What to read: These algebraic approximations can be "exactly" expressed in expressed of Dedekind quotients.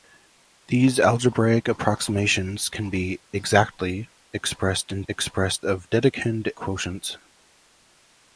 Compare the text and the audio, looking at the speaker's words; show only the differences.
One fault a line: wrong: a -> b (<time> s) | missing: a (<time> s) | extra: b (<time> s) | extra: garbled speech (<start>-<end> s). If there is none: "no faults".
no faults